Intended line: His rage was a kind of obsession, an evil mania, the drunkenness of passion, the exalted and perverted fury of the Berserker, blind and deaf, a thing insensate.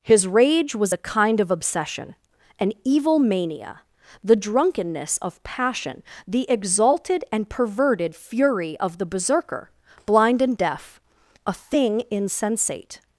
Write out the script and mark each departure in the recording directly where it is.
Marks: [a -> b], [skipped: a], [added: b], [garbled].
His rage was a kind of obsession, an evil mania, the drunkenness of passion, the exalted and perverted fury of the Berserker, blind and deaf, a thing insensate.